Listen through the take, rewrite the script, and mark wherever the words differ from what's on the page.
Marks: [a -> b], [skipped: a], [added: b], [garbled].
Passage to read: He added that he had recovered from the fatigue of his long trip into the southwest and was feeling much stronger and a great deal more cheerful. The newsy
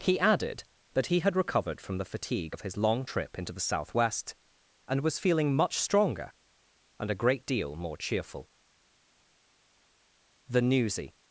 He added that he had recovered from the fatigue of his long trip into the southwest and was feeling much stronger and a great deal more cheerful. The newsy